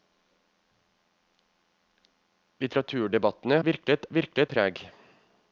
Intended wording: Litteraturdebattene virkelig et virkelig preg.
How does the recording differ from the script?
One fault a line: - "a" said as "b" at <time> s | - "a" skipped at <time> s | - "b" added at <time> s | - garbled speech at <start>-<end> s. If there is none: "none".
none